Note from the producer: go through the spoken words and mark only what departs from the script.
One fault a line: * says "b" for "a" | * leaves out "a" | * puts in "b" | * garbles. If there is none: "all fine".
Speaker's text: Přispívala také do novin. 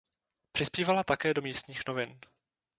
* puts in "místních"